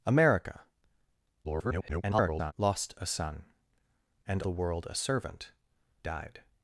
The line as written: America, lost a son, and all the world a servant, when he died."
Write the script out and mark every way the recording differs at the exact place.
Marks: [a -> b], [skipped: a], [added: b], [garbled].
America, [garbled] lost a son, and [skipped: all] the world a servant, [skipped: when he] died."